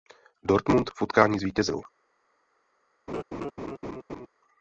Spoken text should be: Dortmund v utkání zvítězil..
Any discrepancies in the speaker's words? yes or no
no